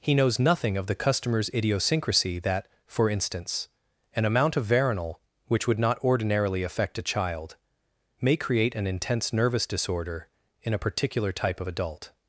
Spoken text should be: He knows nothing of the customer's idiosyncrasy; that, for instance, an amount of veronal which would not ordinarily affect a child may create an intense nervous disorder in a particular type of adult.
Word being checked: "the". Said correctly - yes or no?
yes